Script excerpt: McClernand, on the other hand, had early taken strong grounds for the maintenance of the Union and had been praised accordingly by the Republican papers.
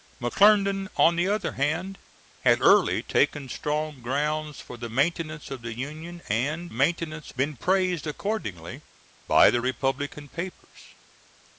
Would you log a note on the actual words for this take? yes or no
yes